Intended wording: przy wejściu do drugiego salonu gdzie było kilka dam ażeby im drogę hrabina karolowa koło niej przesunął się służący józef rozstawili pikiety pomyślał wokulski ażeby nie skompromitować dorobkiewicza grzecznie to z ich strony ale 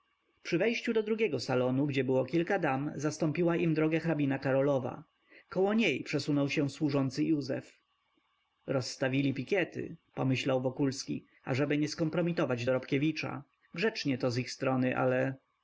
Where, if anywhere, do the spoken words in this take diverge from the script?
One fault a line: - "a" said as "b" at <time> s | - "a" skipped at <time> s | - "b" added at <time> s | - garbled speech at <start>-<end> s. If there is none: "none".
- "ażeby" said as "zastąpiła" at 3.0 s